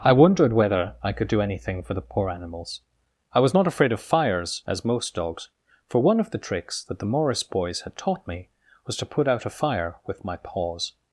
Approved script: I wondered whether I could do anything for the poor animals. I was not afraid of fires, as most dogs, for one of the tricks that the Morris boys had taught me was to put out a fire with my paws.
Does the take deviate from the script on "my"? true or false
false